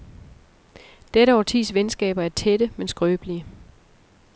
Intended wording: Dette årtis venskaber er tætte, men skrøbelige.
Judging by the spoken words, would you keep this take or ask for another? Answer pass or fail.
pass